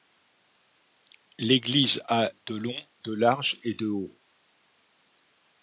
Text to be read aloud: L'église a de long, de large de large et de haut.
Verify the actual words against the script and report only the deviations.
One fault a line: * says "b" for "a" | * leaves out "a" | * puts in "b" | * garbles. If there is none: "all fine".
* leaves out "de large"